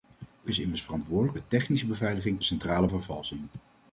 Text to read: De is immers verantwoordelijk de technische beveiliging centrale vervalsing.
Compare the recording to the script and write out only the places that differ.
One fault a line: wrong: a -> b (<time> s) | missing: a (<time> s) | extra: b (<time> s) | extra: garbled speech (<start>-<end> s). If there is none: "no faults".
no faults